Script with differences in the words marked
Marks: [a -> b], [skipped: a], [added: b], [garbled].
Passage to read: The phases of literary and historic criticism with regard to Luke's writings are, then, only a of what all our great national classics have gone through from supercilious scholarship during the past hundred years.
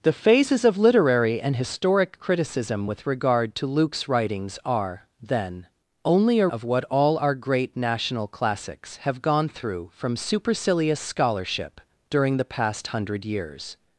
The phases of literary and historic criticism with regard to Luke's writings are, then, only a of what all our great national classics have gone through from supercilious scholarship during the past hundred years.